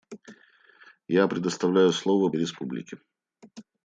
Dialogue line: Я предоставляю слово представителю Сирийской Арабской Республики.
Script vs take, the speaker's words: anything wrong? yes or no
yes